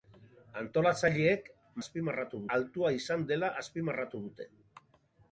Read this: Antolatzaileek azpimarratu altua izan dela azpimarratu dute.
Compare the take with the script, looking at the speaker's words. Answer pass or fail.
pass